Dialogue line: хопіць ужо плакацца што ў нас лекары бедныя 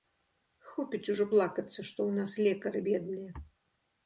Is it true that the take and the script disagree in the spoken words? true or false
false